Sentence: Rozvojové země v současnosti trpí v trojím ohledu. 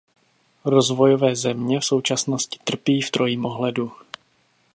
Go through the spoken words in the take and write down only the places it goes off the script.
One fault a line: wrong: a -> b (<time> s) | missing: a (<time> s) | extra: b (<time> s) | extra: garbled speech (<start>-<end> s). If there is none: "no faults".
no faults